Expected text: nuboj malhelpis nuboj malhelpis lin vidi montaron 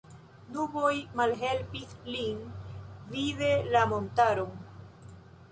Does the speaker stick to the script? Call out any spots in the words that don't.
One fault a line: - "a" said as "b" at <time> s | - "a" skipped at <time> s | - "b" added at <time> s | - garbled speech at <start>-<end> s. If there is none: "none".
- "nuboj malhelpis" skipped at 2.0 s
- "la" added at 3.7 s